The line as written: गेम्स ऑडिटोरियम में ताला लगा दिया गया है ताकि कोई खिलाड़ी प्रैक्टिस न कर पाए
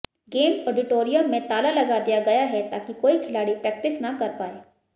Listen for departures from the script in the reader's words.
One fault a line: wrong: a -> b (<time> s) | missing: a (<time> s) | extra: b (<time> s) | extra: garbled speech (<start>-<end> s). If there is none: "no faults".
no faults